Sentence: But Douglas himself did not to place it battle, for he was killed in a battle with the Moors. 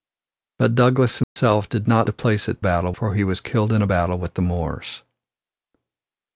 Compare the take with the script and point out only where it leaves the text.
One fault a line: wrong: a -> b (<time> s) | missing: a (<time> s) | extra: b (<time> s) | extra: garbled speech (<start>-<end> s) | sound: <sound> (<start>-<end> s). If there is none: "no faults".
sound: dropout (1.2-1.4 s)